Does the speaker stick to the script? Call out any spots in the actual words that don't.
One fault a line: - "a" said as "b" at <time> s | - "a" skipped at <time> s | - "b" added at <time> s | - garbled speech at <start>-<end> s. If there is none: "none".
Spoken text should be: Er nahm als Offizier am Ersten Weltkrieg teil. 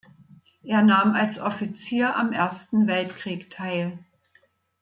none